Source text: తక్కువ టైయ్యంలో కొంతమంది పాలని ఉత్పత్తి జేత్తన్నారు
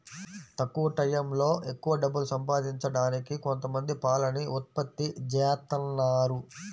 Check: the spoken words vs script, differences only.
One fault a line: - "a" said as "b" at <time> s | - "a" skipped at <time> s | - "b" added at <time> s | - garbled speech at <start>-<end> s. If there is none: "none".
- "ఎక్కవ డబ్బులు సంపాదించడానికి" added at 1.7 s